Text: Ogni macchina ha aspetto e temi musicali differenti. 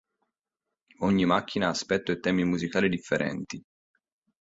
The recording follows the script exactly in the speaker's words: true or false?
true